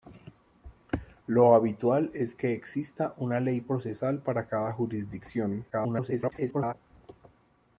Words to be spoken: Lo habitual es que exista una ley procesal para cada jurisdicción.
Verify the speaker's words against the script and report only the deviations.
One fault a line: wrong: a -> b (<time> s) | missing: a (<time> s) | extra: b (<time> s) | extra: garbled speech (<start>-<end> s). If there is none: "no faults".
extra: garbled speech (5.7-6.7 s)